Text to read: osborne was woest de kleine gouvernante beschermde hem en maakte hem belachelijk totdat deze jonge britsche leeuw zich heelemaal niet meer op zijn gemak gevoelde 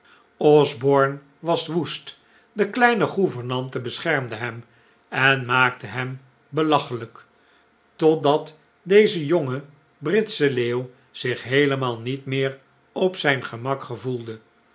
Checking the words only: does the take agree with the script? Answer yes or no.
yes